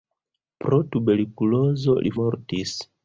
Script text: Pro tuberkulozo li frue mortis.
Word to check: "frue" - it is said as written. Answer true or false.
false